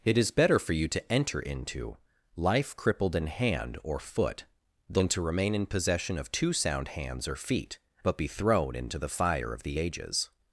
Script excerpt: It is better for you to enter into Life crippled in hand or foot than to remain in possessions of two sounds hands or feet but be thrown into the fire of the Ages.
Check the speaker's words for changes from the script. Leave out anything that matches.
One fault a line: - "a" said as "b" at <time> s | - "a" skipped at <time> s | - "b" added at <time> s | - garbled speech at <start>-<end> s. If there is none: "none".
- "possessions" said as "possession" at 5.7 s
- "sounds" said as "sound" at 6.5 s